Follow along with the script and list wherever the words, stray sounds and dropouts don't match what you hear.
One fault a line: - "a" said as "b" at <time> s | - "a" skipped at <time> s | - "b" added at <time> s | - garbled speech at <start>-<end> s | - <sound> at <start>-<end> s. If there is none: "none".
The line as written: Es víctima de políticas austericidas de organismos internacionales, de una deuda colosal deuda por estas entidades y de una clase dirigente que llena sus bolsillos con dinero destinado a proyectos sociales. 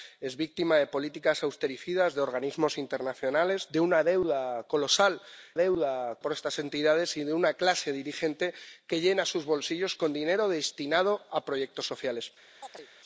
- chirp at 12.6-12.9 s